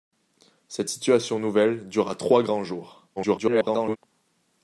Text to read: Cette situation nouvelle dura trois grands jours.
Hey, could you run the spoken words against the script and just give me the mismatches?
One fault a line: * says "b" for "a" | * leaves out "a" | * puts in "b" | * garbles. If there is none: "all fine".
* garbles